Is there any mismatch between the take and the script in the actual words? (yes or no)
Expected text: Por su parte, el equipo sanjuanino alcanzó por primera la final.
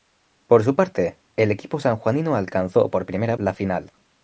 no